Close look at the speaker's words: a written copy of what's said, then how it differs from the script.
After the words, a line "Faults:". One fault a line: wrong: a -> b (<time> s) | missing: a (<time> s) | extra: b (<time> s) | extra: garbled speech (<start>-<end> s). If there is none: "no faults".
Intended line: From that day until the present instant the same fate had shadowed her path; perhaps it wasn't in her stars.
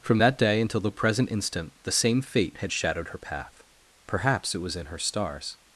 From that day until the present instant the same fate had shadowed her path; perhaps it was in her stars.
Faults:
wrong: wasn't -> was (4.6 s)